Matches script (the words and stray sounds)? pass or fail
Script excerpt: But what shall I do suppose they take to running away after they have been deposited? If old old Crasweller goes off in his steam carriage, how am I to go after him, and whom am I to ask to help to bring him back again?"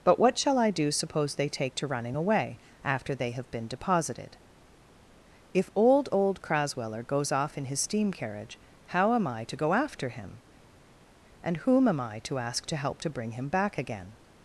pass